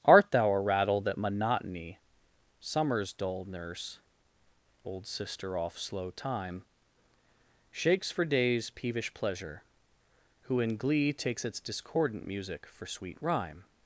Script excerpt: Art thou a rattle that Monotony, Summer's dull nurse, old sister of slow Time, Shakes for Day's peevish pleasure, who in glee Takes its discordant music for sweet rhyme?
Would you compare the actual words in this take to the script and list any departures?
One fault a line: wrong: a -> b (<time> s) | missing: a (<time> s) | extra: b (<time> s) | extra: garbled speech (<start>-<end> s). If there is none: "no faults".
wrong: of -> off (5.5 s)